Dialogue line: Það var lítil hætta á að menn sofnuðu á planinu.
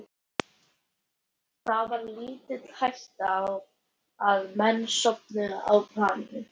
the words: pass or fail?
pass